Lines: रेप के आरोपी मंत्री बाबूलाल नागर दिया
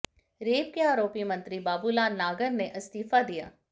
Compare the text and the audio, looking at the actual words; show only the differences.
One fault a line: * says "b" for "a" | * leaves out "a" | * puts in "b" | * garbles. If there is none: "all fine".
* puts in "ने इस्तीफा"